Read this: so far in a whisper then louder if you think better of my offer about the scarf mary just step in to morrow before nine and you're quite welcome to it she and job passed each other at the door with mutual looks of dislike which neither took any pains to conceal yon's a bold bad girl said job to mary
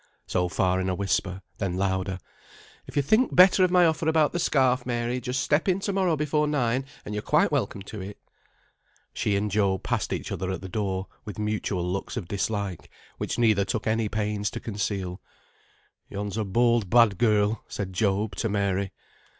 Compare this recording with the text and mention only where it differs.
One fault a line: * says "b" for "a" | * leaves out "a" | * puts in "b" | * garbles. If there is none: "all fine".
all fine